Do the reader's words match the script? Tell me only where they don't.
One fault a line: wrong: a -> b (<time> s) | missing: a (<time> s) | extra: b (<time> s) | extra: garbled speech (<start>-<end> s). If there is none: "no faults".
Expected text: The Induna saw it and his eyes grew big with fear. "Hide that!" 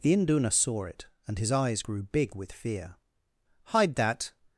no faults